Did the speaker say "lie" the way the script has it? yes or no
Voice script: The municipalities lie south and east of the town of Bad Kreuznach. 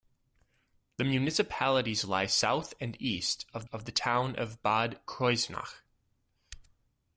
yes